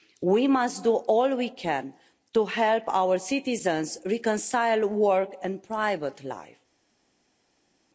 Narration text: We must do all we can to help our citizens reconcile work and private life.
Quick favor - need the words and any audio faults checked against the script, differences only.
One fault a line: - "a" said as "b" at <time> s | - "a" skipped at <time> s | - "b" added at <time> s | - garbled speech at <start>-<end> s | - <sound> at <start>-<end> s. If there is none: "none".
none